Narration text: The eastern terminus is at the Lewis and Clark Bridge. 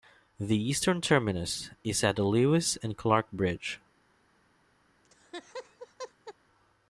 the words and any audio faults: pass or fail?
fail